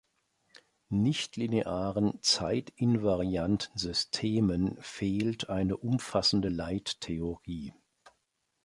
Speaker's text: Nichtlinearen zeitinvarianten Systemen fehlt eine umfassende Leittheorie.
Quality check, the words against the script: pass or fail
pass